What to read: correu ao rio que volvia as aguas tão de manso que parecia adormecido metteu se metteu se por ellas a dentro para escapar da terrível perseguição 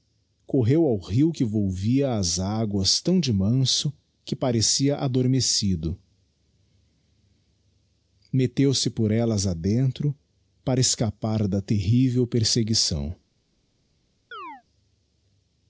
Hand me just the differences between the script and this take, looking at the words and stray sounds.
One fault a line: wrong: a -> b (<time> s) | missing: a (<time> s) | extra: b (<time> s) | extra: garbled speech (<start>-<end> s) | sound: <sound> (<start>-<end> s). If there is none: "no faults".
missing: metteu se (8.9 s)
sound: chirp (14.3-14.6 s)